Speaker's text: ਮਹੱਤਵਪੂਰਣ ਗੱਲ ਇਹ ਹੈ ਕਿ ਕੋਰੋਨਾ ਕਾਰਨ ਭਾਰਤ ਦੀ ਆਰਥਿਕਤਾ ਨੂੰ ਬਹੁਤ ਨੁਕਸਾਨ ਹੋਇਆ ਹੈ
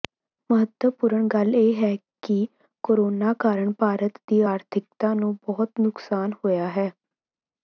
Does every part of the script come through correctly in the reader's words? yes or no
yes